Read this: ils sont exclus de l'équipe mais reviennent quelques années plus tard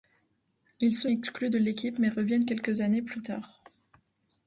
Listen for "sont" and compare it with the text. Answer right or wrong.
right